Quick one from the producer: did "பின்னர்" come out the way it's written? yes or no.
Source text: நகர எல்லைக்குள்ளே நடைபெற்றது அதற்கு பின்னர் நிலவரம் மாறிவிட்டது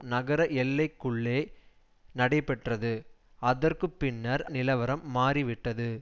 yes